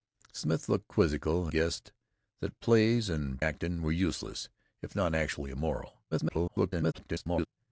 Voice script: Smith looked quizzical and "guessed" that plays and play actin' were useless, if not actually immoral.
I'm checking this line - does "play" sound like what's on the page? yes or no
no